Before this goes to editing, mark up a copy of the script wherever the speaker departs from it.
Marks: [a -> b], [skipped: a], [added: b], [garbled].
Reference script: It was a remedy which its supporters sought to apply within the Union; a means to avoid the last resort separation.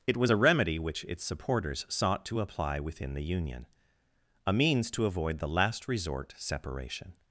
It was a remedy which its supporters sought to apply within the Union; a means to avoid the last resort separation.